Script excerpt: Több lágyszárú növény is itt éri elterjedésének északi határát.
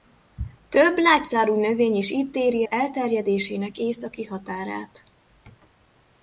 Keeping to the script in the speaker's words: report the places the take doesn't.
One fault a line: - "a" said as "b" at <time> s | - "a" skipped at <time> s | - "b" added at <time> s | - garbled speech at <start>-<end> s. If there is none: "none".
none